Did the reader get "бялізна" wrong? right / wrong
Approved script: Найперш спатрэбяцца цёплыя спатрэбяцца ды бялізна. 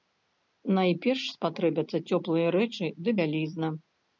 right